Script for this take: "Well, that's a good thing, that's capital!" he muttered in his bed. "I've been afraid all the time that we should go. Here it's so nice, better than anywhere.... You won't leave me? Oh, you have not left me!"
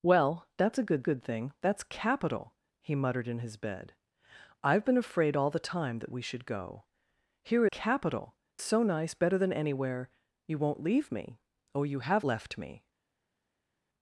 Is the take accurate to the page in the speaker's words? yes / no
no